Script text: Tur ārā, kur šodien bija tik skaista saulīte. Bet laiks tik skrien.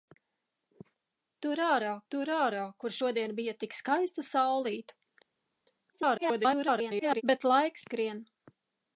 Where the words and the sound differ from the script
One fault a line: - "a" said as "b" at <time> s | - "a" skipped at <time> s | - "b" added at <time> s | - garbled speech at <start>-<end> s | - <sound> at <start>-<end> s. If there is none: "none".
- "tur ārā" added at 2.1 s
- garbled speech at 5.9-7.2 s
- "tik" skipped at 7.9 s